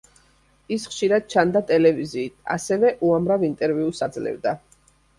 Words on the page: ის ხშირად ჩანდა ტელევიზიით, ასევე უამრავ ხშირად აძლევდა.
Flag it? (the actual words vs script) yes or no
yes